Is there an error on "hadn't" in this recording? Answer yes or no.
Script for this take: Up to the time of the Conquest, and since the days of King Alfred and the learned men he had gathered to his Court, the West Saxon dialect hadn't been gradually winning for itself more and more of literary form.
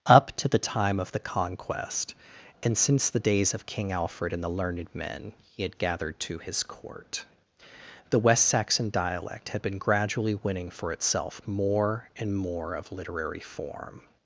yes